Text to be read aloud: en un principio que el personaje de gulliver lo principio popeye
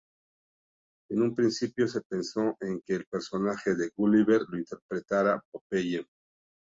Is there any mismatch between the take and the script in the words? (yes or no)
yes